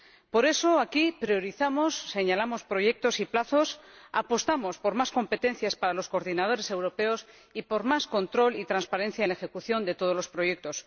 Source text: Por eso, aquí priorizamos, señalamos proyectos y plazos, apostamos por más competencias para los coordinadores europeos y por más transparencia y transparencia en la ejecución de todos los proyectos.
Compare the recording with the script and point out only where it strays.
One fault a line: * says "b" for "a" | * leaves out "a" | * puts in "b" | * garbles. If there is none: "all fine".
* says "control" for "transparencia"